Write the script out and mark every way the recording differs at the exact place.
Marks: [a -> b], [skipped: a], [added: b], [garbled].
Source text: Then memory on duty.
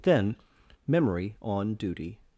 Then memory on duty.